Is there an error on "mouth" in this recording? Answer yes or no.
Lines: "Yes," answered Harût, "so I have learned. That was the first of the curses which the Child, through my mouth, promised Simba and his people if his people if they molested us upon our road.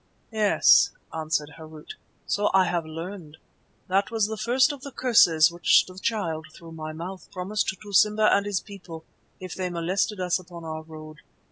no